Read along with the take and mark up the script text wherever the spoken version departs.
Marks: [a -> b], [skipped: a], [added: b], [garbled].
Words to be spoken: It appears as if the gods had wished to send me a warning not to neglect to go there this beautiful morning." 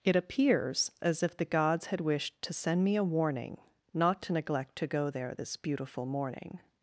It appears as if the gods had wished to send me a warning not to neglect to go there this beautiful morning."